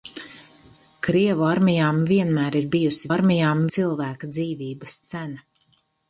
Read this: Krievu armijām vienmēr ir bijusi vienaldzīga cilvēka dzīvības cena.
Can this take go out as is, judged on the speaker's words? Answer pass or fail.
fail